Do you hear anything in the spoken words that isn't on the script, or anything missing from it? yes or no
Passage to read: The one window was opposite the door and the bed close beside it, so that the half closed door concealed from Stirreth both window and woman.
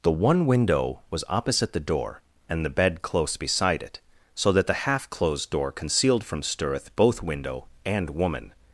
no